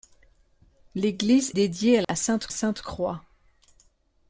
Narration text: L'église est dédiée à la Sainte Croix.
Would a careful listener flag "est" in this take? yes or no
yes